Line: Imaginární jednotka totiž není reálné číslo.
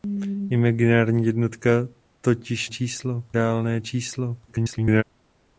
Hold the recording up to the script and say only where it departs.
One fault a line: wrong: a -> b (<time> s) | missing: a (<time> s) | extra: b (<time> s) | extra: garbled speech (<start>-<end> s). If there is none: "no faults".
wrong: není -> číslo (2.7 s)
extra: garbled speech (4.5-5.0 s)